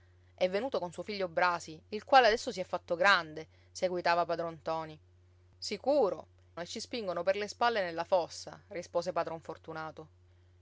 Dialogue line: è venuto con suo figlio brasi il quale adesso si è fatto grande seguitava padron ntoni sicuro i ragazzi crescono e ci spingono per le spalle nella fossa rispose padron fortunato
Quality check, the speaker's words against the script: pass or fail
fail